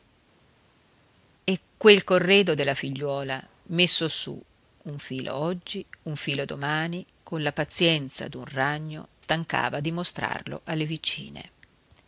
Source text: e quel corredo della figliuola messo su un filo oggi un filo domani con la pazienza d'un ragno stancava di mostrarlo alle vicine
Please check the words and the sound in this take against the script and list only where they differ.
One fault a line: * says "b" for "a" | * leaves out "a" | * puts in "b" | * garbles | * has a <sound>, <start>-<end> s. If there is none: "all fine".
all fine